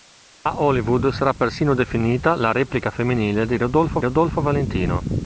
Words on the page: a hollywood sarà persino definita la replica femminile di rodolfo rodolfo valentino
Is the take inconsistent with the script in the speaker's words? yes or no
no